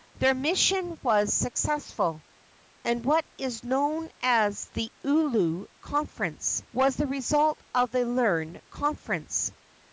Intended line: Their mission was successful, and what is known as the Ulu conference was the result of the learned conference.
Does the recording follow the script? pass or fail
pass